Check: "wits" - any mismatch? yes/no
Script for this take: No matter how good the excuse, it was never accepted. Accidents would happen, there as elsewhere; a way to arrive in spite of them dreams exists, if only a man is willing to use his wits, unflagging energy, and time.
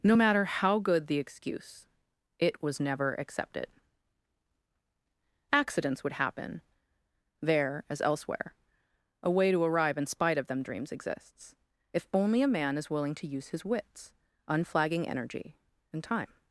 no